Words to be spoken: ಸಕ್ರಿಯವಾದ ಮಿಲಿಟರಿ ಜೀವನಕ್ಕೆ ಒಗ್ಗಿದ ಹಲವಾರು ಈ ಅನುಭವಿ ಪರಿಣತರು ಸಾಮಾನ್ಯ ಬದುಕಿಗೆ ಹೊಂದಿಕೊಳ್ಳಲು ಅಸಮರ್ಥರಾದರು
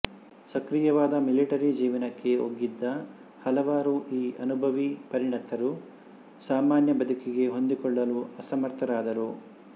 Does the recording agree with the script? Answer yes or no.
yes